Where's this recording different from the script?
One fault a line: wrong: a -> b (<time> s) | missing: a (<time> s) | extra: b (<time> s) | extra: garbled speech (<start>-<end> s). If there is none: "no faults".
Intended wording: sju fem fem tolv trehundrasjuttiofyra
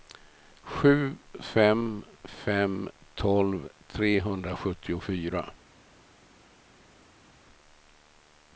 no faults